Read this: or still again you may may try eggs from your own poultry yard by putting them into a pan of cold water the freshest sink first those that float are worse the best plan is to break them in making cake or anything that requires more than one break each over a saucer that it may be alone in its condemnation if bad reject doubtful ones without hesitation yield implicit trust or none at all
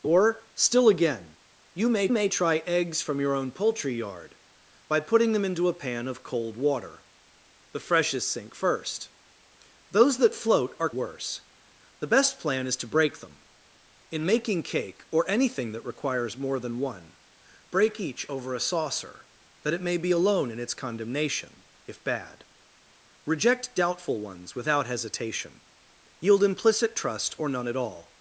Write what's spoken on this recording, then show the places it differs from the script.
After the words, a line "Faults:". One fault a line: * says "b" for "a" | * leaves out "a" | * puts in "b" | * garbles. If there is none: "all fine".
or still again you may may try eggs from your own poultry yard by putting them into a pan of cold water the freshest sink first those that float are worse the best plan is to break them in making cake or anything that requires more than one break each over a saucer that it may be alone in its condemnation if bad reject doubtful ones without hesitation yield implicit trust or none at all
Faults:
all fine